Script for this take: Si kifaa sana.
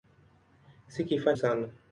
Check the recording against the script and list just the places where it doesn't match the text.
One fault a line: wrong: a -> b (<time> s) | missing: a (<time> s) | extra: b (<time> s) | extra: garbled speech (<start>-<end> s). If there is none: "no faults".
no faults